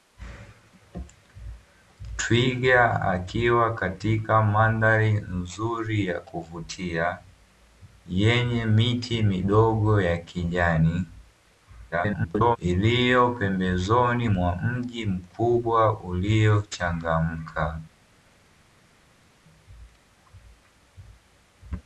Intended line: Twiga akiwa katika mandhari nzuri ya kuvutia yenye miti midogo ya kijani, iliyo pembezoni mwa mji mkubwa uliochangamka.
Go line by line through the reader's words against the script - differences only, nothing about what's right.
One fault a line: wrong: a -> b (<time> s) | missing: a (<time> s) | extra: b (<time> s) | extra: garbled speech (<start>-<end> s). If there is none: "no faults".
extra: garbled speech (11.9-12.6 s)